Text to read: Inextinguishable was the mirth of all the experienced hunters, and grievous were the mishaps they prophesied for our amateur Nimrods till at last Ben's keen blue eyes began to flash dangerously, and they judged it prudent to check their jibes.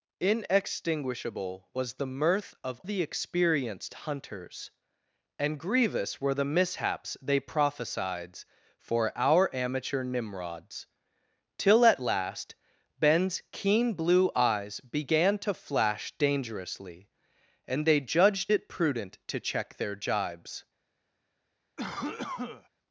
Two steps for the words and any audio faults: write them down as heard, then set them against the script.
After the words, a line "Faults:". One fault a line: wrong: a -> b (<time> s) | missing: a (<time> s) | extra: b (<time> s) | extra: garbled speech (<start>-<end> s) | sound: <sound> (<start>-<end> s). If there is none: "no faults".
Inextinguishable was the mirth of the experienced hunters, and grievous were the mishaps they prophesied for our amateur Nimrods till at last Ben's keen blue eyes began to flash dangerously, and they judged it prudent to check their jibes.
Faults:
missing: all (2.8 s)
sound: cough (21.8-22.7 s)